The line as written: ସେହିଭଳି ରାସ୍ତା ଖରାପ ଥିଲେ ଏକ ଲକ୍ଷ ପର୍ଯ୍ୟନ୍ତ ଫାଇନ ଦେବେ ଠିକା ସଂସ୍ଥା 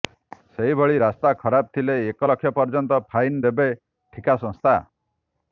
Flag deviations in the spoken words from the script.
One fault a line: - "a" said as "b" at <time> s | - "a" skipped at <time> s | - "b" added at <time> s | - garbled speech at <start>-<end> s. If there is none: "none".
none